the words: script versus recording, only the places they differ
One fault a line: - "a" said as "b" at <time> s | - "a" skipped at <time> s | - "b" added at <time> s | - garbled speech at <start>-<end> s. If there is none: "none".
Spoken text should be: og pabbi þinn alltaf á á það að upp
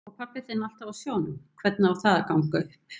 - "sjónum hvernig" added at 1.0 s
- "ganga" added at 2.3 s